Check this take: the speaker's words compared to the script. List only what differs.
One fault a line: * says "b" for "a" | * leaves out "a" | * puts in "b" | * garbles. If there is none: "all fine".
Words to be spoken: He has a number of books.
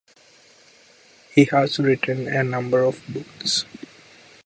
* puts in "written"